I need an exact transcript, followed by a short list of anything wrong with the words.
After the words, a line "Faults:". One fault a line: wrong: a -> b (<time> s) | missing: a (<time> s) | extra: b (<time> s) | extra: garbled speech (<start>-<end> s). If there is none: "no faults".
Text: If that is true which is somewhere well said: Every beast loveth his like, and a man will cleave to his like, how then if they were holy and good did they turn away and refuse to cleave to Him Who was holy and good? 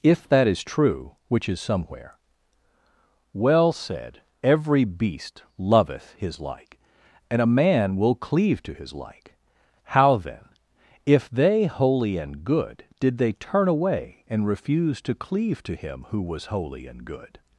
If that is true which is somewhere well said: Every beast loveth his like, and a man will cleave to his like, how then if they holy and good did they turn away and refuse to cleave to Him Who was holy and good?
Faults:
missing: were (11.7 s)